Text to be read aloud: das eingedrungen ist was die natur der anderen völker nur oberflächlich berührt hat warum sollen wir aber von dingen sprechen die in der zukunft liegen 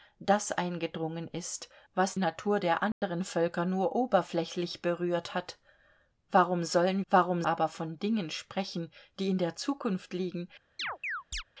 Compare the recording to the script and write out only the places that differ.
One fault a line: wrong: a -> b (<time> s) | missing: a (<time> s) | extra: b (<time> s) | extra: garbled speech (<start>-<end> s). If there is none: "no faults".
missing: die (2.1 s)
wrong: wir -> warum (7.1 s)